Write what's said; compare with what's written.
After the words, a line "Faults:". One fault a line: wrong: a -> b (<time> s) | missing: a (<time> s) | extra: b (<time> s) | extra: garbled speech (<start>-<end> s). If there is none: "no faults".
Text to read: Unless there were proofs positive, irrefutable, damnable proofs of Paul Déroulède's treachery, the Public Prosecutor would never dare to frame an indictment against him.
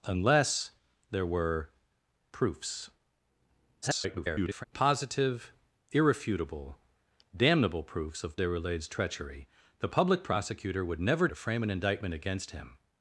Unless there were proofs [garbled] positive, irrefutable, damnable proofs of Déroulède's treachery, the Public Prosecutor would never to frame an indictment against him.
Faults:
extra: garbled speech (3.8-4.6 s)
missing: Paul (8.4 s)
missing: dare (11.3 s)